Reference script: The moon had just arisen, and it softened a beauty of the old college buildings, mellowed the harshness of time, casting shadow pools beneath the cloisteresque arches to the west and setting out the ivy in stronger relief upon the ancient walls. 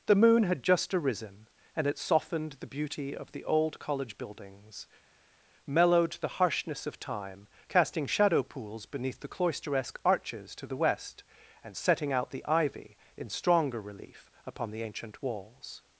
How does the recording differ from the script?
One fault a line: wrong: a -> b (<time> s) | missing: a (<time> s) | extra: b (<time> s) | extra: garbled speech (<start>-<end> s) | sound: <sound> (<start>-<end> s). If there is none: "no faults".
wrong: a -> the (2.6 s)